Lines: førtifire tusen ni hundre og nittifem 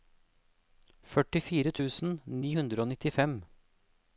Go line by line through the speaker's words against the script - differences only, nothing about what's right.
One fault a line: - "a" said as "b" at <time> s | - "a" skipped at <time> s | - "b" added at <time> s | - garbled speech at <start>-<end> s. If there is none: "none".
none